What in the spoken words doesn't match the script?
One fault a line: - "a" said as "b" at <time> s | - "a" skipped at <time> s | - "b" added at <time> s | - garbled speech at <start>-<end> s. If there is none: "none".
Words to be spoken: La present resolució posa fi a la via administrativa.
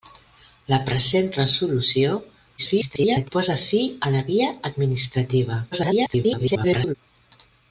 - garbled speech at 2.6-3.3 s
- garbled speech at 5.7-6.9 s